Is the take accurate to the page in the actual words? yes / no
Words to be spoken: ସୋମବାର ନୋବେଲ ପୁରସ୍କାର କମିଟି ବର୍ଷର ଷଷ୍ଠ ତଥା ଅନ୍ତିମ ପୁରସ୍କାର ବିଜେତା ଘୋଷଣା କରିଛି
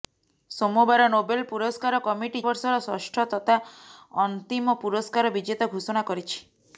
yes